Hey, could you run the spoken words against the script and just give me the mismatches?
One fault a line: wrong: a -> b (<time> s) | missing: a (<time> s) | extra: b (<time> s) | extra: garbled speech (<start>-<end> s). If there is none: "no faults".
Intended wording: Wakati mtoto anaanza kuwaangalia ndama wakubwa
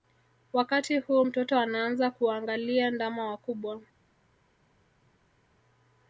extra: huu (1.0 s)